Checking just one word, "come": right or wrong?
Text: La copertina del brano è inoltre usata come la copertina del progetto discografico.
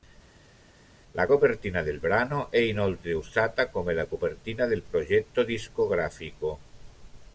right